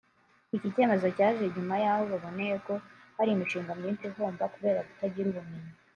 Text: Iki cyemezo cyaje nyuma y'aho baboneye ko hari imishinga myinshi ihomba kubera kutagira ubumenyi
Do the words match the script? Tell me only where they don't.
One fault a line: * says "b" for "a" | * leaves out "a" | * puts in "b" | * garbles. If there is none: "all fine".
all fine